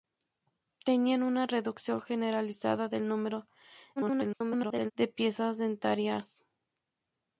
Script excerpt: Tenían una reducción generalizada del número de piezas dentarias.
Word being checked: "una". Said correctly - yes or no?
yes